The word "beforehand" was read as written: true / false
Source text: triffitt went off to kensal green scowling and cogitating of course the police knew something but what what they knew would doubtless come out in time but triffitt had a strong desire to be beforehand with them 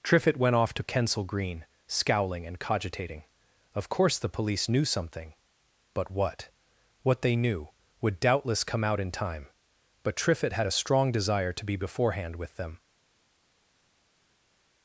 true